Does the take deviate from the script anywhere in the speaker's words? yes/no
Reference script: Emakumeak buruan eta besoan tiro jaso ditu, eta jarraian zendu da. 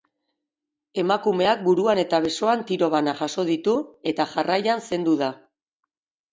yes